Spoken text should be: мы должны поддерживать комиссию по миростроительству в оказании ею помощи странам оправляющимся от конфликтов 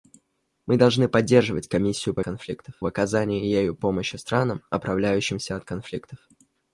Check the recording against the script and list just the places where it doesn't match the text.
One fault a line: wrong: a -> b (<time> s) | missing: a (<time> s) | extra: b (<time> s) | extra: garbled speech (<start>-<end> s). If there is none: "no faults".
wrong: миростроительству -> конфликтов (2.2 s)